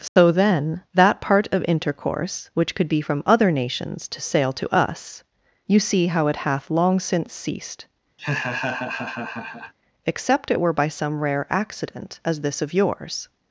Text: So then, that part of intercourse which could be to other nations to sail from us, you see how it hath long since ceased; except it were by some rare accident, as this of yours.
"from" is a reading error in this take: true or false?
true